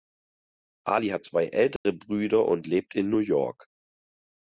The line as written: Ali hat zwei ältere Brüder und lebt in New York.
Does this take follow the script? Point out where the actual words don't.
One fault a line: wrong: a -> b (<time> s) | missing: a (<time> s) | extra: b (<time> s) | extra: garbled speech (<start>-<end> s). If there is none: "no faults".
no faults